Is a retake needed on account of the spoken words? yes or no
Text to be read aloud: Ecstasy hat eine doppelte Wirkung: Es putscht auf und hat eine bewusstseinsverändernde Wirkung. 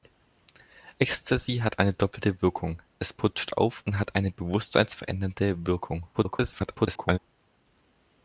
yes